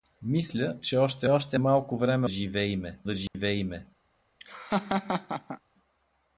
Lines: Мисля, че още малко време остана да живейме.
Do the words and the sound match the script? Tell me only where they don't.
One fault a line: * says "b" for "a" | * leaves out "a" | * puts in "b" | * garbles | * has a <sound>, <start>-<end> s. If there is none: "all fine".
* puts in "още"
* says "живейме" for "остана"
* has a dropout, 3.3-3.3 s
* has a laugh, 4.4-5.6 s